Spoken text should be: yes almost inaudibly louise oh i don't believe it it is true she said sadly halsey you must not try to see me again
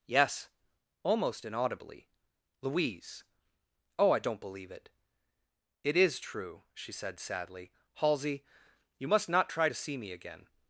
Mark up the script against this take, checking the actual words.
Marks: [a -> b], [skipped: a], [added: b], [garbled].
yes almost inaudibly louise oh i don't believe it it is true she said sadly halsey you must not try to see me again